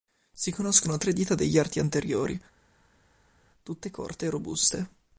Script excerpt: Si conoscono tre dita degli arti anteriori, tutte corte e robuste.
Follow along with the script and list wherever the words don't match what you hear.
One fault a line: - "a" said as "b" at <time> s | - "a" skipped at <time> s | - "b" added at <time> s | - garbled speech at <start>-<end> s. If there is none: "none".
none